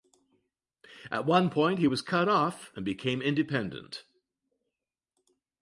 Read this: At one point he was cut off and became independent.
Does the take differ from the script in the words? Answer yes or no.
no